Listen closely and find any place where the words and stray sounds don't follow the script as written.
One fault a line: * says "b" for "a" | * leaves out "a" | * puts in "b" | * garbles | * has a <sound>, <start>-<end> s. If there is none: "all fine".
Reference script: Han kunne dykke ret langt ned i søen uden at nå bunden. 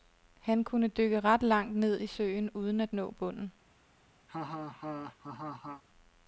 * has a laugh, 4.3-5.8 s